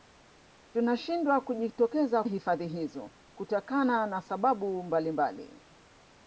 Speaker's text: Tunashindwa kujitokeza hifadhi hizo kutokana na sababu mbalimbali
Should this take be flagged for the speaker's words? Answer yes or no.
no